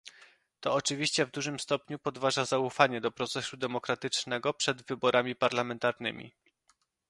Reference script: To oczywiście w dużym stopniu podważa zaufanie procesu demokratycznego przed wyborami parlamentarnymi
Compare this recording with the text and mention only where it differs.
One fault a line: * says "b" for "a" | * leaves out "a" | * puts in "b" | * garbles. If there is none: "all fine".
* puts in "do"